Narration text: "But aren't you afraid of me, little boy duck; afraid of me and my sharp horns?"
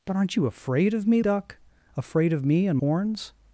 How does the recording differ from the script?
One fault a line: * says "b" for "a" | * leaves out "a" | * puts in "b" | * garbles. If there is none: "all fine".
* leaves out "little boy"
* leaves out "my sharp"